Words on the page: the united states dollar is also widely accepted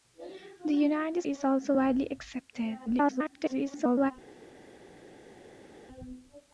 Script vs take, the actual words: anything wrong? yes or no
yes